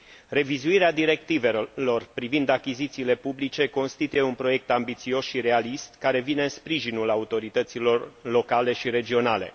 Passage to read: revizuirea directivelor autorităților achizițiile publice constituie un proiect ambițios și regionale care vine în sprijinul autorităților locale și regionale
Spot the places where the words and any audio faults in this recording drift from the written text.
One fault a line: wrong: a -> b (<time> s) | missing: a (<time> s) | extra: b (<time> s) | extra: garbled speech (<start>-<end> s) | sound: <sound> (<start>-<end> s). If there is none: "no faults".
wrong: autorităților -> privind (2.1 s)
wrong: regionale -> realist (5.4 s)